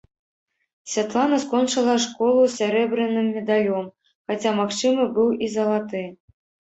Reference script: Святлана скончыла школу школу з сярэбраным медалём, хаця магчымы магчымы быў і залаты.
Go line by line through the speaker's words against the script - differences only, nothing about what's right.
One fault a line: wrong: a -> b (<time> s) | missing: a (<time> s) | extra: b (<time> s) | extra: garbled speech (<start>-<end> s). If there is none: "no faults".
missing: школу (2.4 s)
missing: магчымы (5.1 s)